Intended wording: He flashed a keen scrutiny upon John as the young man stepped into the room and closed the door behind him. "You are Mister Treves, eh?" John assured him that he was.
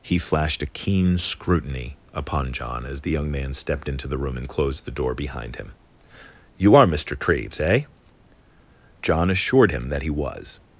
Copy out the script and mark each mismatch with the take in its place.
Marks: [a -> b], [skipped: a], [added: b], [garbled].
He flashed a keen scrutiny upon John as the young man stepped into the room and closed the door behind him. "You are Mister Treves, eh?" John assured him that he was.